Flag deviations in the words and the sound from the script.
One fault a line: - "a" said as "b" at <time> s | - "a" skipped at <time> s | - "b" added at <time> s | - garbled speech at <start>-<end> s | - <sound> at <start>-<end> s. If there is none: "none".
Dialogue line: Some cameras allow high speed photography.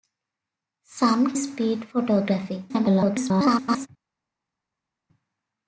- "cameras allow high" skipped at 1.4 s
- garbled speech at 2.7-3.9 s